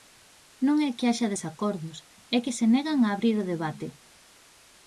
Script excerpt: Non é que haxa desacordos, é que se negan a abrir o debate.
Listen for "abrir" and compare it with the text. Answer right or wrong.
right